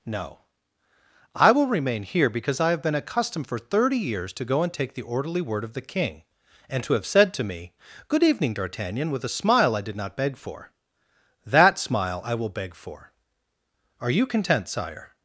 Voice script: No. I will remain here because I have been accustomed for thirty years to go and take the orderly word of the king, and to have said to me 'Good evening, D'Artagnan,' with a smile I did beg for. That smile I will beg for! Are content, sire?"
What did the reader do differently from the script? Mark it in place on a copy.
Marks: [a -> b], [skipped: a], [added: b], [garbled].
No. I will remain here because I have been accustomed for thirty years to go and take the orderly word of the king, and to have said to me 'Good evening, D'Artagnan,' with a smile I did [added: not] beg for. That smile I will beg for! Are [added: you] content, sire?"